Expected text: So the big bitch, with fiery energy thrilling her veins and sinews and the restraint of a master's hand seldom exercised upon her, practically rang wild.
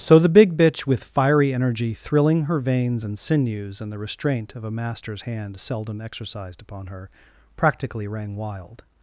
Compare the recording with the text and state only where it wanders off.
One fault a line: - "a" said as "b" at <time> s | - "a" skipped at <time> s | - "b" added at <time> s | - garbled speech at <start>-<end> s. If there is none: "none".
none